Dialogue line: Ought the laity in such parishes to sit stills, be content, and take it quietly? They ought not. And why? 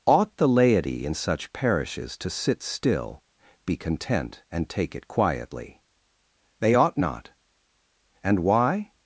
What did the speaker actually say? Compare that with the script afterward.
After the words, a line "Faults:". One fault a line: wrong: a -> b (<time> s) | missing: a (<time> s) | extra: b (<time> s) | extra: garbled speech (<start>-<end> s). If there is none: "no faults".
Ought the laity in such parishes to sit still, be content, and take it quietly? They ought not. And why?
Faults:
wrong: stills -> still (2.6 s)